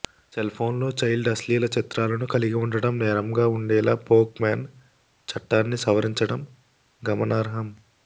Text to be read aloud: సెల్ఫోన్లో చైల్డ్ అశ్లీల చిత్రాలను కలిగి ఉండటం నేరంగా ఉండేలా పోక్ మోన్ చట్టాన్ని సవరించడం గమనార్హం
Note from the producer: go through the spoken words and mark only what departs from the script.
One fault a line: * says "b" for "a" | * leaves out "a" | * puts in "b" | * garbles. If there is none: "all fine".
all fine